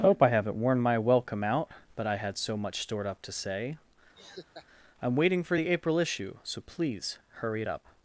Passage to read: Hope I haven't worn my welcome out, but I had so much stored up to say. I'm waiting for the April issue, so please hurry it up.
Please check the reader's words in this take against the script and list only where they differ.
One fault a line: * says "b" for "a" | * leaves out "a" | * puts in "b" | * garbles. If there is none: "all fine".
all fine